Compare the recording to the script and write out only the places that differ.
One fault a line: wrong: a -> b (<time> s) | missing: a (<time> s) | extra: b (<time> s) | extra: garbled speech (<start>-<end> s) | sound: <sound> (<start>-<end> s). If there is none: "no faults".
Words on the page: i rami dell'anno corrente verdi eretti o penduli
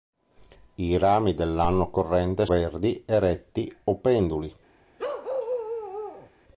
sound: bark (5.0-6.3 s)